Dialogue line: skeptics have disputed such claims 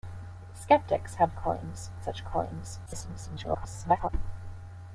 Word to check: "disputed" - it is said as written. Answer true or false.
false